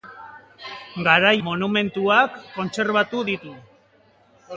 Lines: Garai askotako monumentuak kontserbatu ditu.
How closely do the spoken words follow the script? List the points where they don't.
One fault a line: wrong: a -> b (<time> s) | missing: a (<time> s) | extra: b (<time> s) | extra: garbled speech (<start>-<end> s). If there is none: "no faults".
missing: askotako (1.3 s)